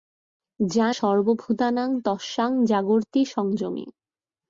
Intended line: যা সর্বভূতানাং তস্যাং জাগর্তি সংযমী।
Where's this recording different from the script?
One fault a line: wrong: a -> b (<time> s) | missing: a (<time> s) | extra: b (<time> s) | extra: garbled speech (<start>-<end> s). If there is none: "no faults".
no faults